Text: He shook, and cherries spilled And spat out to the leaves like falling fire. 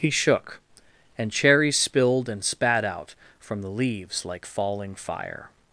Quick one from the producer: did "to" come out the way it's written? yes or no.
no